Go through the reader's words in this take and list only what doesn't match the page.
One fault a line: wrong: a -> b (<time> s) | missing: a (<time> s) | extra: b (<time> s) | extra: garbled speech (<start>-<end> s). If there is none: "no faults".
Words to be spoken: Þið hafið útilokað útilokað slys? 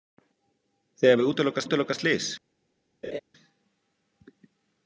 no faults